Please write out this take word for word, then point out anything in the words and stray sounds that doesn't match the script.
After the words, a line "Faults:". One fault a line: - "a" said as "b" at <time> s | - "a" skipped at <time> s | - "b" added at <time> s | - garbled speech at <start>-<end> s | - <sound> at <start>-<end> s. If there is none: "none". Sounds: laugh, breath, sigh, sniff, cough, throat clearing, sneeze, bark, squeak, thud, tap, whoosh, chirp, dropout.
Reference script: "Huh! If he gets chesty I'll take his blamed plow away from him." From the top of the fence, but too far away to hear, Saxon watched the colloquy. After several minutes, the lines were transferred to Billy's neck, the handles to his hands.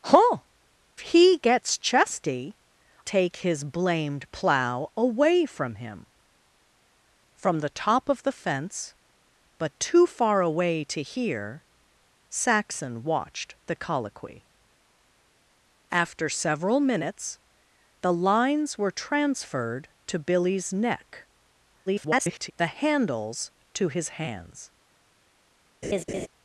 "Huh! He gets chesty Take his blamed plow away from him." From the top of the fence, but too far away to hear, Saxon watched the colloquy. After several minutes, the lines were transferred to Billy's neck, [garbled] the handles to his hands.
Faults:
- "If" skipped at 0.4 s
- "I'll" skipped at 2.6 s
- garbled speech at 21.9-22.5 s
- laugh at 25.8-26.3 s